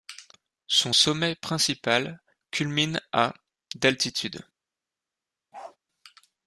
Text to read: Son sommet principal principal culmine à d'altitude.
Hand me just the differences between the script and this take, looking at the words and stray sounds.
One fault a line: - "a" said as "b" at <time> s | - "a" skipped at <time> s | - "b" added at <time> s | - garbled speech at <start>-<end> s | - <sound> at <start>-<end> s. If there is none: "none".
- "principal" skipped at 2.2 s
- bark at 5.5-5.8 s